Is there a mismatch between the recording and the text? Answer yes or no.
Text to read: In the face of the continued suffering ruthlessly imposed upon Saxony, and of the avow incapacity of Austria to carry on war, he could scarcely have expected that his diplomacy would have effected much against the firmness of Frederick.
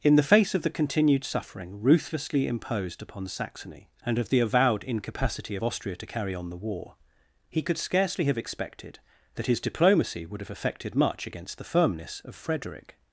yes